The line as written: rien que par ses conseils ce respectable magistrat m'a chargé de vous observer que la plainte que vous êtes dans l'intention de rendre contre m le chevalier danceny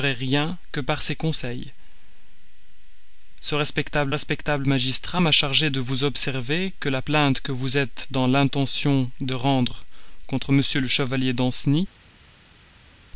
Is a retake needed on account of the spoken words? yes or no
yes